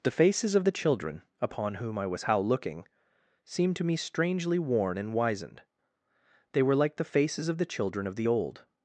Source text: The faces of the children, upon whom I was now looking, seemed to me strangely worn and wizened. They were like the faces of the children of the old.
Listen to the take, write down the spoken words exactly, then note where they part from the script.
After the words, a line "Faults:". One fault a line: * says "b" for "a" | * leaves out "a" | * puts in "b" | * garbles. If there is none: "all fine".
The faces of the children, upon whom I was how looking, seemed to me strangely worn and wizened. They were like the faces of the children of the old.
Faults:
* says "how" for "now"